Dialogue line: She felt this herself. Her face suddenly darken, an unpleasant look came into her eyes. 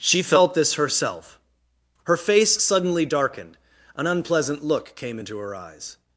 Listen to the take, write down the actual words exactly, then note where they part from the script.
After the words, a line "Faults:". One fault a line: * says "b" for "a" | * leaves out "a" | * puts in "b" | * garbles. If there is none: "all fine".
She felt this herself. Her face suddenly darkened, an unpleasant look came into her eyes.
Faults:
* says "darkened" for "darken"